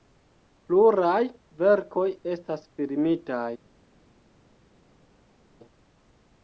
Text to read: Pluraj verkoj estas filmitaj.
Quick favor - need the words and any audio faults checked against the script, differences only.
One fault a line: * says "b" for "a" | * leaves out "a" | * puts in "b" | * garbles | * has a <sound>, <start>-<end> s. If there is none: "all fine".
all fine